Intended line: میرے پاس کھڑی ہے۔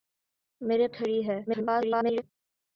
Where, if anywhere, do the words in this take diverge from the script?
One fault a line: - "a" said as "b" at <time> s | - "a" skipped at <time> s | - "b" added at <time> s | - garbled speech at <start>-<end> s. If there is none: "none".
- "پاس" skipped at 0.9 s
- garbled speech at 1.5-2.2 s